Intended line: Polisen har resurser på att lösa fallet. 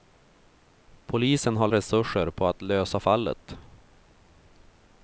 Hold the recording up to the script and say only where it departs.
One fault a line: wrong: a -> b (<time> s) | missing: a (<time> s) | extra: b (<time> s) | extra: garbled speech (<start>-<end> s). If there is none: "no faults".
no faults